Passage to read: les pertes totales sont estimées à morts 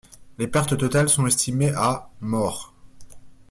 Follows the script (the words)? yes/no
yes